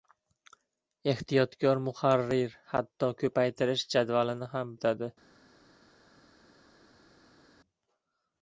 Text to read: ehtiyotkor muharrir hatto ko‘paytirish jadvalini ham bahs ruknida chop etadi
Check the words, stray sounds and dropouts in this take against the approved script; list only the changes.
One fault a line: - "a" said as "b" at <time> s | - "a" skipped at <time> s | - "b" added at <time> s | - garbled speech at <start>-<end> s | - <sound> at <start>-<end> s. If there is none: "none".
- "bahs ruknida chop" skipped at 4.7 s